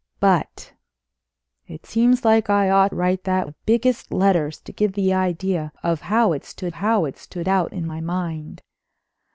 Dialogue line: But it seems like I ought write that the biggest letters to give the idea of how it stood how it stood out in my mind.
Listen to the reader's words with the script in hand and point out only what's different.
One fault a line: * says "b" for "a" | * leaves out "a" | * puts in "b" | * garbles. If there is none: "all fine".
all fine